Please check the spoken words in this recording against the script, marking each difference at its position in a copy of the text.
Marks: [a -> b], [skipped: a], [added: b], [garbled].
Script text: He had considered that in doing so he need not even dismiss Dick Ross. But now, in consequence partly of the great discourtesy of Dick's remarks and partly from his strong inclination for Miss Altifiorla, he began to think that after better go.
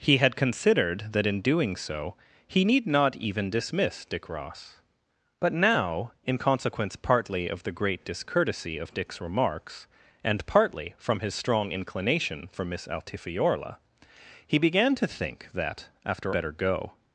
He had considered that in doing so he need not even dismiss Dick Ross. But now, in consequence partly of the great discourtesy of Dick's remarks and partly from his strong inclination for Miss Altifiorla, he began to think that after better go.